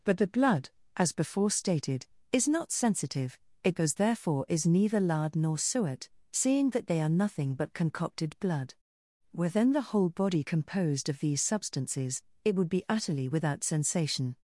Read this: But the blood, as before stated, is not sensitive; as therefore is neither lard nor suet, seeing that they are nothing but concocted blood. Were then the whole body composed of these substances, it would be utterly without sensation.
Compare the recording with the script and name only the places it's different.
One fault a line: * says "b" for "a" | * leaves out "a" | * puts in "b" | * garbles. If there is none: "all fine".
* says "it goes" for "as"